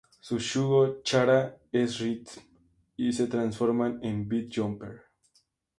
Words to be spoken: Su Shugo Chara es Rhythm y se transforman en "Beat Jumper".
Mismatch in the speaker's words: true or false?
false